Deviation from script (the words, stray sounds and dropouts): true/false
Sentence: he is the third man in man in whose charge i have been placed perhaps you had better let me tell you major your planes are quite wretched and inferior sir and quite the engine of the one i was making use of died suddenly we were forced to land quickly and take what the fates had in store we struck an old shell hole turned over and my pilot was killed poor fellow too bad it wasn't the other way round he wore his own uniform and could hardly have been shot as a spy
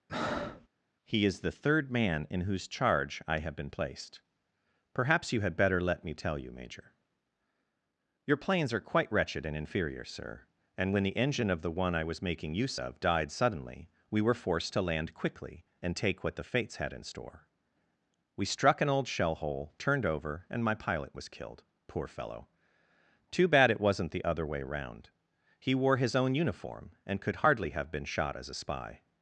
true